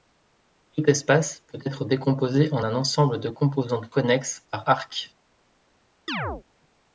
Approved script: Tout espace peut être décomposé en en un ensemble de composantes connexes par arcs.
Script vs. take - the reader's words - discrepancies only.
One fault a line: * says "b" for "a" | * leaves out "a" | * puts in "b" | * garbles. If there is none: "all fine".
* leaves out "en"